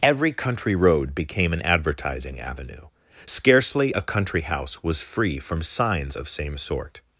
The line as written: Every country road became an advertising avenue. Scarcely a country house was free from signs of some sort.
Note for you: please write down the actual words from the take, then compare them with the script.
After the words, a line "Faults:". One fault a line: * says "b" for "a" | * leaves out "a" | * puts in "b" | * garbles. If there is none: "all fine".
Every country road became an advertising avenue. Scarcely a country house was free from signs of same sort.
Faults:
* says "same" for "some"